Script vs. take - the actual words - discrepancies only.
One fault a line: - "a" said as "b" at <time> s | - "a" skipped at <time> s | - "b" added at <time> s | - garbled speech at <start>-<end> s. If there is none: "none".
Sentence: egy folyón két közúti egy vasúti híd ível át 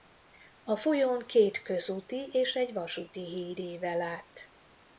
- "egy" said as "a" at 0.6 s
- "és" added at 2.3 s